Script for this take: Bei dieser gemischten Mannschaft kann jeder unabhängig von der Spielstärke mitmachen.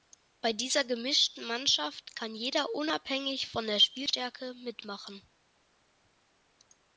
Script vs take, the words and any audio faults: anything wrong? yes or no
no